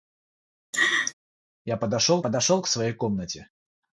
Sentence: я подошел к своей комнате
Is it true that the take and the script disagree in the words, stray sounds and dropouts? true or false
true